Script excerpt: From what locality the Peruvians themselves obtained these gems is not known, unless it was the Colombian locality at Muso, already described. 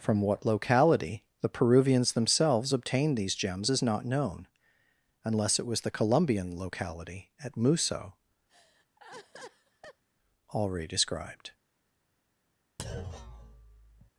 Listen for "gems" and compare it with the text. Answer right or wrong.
right